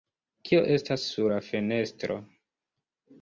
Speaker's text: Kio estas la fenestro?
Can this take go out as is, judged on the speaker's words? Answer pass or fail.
fail